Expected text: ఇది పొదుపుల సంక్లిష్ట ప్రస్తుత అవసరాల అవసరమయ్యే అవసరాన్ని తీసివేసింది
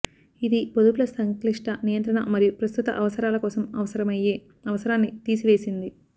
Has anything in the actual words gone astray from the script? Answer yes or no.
yes